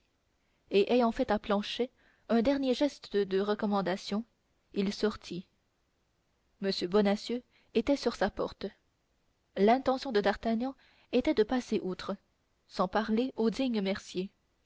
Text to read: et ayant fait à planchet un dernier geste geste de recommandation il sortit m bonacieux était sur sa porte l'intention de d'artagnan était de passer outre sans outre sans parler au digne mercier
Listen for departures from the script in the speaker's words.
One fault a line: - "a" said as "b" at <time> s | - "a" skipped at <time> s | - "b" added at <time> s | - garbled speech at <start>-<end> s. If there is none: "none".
- "geste" skipped at 3.1 s
- "outre sans" skipped at 12.9 s